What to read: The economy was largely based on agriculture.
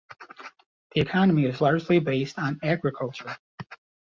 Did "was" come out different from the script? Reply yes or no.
yes